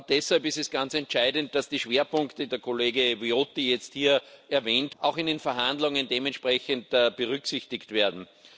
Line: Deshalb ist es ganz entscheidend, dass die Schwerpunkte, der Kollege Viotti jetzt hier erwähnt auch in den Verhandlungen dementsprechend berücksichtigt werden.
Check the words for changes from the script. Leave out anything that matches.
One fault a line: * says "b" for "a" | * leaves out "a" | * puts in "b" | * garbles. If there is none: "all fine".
all fine